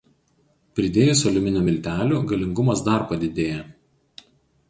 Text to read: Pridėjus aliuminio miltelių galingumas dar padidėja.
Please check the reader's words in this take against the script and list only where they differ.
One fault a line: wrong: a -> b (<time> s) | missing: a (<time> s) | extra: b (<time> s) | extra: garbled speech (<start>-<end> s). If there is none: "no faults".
no faults